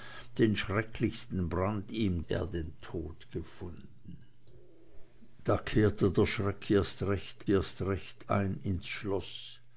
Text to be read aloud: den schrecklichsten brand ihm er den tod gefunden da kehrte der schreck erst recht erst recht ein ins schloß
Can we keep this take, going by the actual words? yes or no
yes